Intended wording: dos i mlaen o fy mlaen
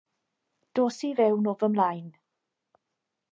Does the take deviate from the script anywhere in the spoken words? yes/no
yes